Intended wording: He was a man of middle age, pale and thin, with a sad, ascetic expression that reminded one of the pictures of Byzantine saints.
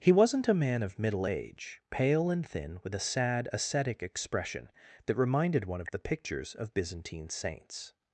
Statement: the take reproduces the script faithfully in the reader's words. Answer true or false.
false